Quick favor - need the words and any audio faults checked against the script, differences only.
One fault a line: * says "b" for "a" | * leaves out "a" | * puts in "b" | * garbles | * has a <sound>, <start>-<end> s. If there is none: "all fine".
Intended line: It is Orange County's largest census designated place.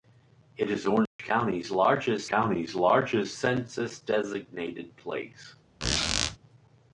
* has a dropout, 1.1-1.2 s
* puts in "County's largest"
* has a squeak, 5.8-6.4 s